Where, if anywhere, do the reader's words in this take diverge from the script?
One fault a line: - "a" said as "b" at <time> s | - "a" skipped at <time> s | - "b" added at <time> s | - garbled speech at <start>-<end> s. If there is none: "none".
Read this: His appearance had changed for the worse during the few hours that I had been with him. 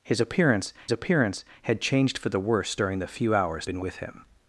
- "appearance" added at 0.9 s
- "that I had" skipped at 3.7 s